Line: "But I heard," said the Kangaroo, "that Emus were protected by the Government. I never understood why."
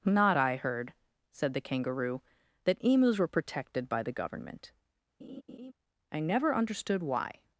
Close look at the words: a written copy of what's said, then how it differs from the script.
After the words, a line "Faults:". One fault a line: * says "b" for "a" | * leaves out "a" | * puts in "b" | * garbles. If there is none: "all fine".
"Not I heard," said the Kangaroo, "that Emus were protected by the Government. I never understood why."
Faults:
* says "Not" for "But"